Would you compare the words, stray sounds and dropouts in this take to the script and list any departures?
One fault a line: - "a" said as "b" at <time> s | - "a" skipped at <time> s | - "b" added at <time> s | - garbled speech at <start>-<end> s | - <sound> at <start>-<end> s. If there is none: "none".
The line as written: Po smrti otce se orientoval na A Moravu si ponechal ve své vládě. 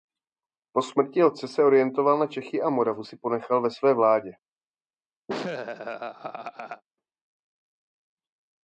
- "Čechy" added at 2.3 s
- laugh at 5.3-6.8 s